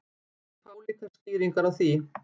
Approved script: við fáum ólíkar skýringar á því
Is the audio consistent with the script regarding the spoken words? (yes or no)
no